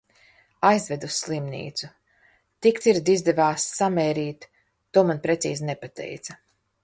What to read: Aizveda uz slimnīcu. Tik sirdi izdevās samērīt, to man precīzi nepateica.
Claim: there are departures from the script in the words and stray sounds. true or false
false